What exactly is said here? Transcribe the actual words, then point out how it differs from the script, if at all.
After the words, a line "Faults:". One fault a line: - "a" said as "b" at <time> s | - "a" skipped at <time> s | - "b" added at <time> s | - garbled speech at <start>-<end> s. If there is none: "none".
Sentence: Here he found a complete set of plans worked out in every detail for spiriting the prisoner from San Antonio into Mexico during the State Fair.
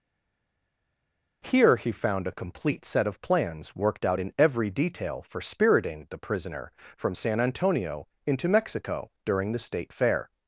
Here he found a complete set of plans worked out in every detail for spiriting the prisoner from San Antonio into Mexico during the State Fair.
Faults:
none